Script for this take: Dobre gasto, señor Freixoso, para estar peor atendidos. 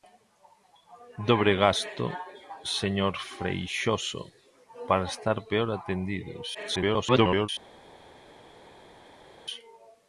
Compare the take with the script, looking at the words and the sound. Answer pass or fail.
fail